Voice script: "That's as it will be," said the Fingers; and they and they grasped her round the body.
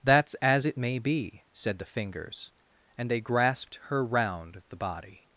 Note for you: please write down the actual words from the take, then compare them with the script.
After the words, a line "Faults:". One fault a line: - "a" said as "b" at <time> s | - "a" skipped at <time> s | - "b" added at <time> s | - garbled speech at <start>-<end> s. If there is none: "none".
"That's as it may be," said the Fingers; and they grasped her round the body.
Faults:
- "will" said as "may" at 0.8 s
- "and they" skipped at 3.2 s